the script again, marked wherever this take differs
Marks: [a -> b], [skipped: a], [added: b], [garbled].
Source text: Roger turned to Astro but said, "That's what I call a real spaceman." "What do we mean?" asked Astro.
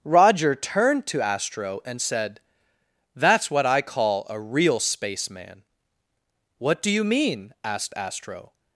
Roger turned to Astro [but -> and] said, "That's what I call a real spaceman." "What do [we -> you] mean?" asked Astro.